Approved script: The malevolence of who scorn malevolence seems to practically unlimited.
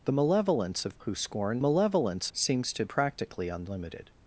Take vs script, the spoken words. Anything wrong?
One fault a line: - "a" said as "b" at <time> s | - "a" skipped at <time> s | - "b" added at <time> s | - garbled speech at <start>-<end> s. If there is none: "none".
none